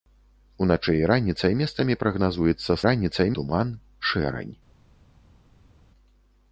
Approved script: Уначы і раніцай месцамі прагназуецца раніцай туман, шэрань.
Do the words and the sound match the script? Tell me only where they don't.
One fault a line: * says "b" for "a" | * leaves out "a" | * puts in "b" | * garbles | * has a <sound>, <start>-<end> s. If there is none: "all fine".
all fine